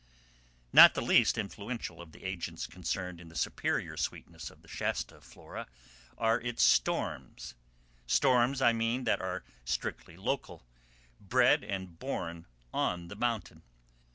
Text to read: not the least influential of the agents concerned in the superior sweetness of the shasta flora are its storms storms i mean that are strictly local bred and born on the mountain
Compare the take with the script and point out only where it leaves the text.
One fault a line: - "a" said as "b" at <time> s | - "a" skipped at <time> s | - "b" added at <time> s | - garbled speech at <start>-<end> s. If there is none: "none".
none